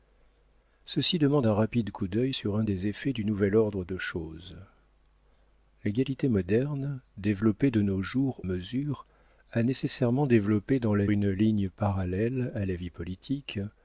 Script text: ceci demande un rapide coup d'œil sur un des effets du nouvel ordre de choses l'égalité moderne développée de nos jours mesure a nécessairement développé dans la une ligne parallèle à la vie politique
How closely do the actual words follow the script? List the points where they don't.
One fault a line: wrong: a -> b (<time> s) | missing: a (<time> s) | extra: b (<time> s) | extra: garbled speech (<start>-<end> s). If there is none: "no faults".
no faults